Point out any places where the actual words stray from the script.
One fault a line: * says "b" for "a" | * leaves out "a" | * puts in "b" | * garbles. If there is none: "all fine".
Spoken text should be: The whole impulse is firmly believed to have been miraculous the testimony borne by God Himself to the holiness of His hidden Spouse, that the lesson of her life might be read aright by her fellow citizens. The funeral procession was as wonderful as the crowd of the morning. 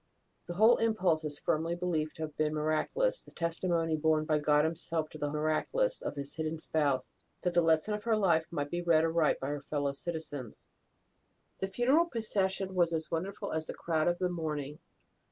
* says "miraculous" for "holiness"